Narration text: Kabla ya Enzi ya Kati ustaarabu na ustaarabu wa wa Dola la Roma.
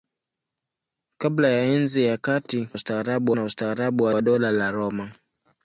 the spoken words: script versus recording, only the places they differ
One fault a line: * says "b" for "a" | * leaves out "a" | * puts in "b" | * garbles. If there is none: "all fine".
all fine